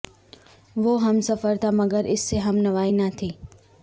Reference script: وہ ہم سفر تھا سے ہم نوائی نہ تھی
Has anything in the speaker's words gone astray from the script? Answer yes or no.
yes